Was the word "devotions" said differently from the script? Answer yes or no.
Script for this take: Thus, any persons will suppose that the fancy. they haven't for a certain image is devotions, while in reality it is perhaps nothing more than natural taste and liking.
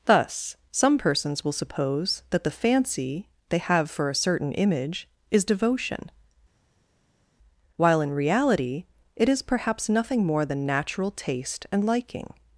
yes